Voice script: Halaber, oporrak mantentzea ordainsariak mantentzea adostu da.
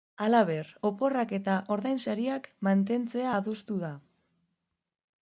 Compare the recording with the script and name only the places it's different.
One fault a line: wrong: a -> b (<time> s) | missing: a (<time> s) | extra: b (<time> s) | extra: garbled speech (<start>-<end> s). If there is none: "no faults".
wrong: mantentzea -> eta (1.4 s)